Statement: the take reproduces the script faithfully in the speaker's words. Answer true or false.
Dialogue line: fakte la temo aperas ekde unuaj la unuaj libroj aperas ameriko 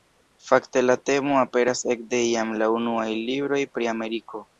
false